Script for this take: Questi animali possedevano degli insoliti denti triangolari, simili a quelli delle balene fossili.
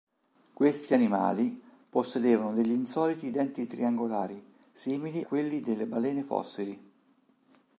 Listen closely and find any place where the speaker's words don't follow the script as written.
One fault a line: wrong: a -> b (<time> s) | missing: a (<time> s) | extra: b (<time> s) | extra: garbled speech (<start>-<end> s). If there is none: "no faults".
missing: a (5.3 s)